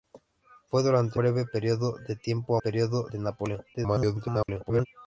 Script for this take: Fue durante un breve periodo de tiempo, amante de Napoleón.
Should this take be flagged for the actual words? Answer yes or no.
yes